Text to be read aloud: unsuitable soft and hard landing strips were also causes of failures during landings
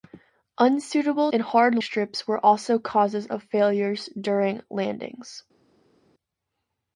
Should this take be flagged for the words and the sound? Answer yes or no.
yes